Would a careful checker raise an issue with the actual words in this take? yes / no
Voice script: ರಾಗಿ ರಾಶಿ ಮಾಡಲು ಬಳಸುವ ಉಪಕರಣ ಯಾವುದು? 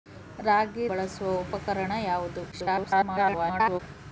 yes